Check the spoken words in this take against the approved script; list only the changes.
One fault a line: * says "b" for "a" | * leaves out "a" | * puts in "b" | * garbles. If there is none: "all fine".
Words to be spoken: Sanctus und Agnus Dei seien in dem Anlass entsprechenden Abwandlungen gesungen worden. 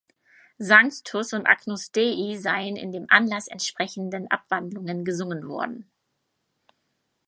all fine